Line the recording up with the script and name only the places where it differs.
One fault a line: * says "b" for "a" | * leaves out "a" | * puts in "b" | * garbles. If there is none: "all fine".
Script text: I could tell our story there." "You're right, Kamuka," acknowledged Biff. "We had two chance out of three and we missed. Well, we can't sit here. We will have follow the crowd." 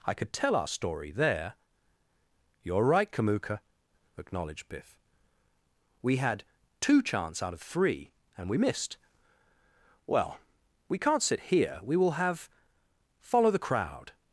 all fine